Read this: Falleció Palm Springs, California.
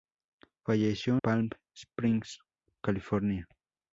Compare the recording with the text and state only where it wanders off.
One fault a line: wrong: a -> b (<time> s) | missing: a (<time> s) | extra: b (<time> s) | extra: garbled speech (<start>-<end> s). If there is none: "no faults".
no faults